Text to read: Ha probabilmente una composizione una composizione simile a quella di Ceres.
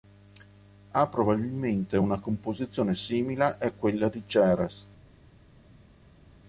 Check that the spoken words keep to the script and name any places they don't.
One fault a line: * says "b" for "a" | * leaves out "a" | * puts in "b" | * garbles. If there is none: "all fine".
* leaves out "una composizione"